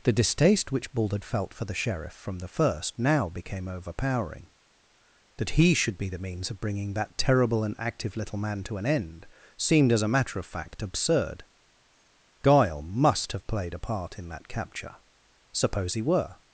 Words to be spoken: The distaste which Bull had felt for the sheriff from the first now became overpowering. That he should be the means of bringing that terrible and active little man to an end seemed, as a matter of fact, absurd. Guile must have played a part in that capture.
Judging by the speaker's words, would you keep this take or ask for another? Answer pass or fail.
fail